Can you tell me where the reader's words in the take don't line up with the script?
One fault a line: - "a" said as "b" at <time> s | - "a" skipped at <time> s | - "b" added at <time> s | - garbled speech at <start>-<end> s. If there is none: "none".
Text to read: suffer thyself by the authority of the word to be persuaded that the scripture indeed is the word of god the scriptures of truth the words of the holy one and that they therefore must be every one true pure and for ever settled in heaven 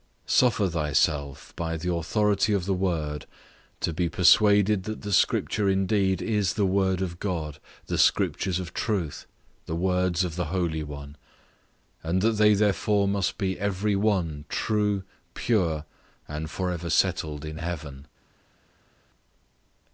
none